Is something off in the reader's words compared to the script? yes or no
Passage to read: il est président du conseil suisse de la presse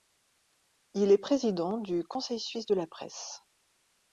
no